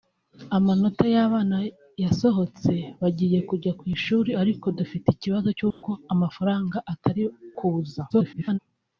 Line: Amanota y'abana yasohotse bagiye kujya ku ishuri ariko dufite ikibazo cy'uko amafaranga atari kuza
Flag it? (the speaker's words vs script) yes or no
yes